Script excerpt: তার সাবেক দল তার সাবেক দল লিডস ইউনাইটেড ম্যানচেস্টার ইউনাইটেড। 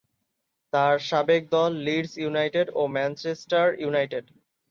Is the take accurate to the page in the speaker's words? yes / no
no